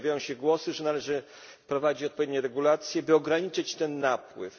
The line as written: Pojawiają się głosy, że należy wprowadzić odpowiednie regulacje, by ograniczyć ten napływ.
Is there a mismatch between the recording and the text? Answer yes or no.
no